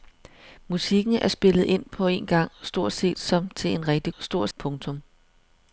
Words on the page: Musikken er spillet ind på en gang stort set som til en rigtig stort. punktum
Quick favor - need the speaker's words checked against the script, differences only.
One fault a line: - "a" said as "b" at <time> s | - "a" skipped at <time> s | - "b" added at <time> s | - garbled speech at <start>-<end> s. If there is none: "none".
none